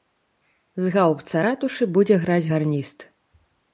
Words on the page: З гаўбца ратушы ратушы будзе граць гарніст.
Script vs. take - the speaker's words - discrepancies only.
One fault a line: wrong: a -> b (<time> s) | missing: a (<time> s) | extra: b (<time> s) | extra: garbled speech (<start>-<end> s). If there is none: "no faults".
missing: ратушы (1.9 s)